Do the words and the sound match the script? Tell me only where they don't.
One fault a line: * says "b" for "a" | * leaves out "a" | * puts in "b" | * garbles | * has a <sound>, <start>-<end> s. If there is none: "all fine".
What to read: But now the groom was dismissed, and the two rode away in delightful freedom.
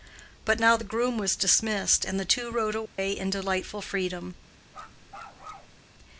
* has a dropout, 2.9-3.0 s
* has a bark, 4.7-5.8 s